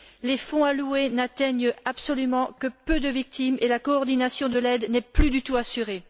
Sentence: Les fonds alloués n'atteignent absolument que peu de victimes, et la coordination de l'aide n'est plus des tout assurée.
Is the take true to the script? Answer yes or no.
no